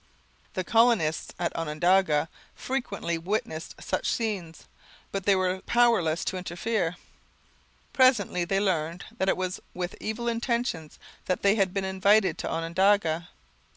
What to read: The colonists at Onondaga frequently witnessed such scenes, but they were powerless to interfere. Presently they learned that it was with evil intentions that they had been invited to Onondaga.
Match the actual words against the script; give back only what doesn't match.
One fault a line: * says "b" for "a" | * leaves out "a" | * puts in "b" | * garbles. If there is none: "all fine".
all fine